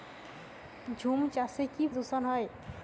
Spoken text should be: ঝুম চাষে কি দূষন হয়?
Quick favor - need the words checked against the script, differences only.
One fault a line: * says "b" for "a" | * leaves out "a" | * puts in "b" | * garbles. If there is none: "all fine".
all fine